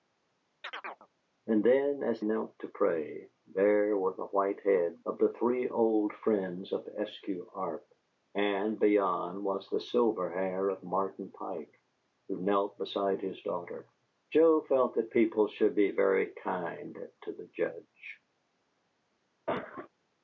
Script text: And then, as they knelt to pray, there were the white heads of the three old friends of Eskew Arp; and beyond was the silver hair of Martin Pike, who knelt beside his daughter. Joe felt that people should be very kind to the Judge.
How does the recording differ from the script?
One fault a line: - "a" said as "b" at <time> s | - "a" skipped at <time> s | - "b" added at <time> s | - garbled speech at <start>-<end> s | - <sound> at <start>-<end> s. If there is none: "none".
- chirp at 0.6-1.1 s
- "they" skipped at 2.2 s
- cough at 19.5-19.9 s